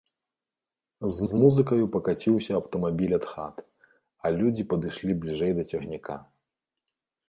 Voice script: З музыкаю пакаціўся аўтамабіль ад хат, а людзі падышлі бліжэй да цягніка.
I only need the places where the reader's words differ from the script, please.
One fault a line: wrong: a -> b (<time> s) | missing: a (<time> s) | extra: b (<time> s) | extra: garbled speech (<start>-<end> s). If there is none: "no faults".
extra: з (1.3 s)